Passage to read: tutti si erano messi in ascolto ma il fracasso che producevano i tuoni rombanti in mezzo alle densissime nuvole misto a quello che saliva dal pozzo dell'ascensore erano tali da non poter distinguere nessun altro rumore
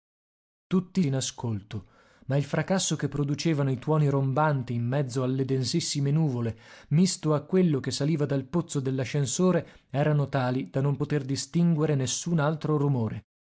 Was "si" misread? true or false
true